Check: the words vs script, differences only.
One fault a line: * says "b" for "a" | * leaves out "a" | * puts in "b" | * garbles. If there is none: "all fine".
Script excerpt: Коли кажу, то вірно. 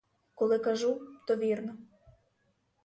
all fine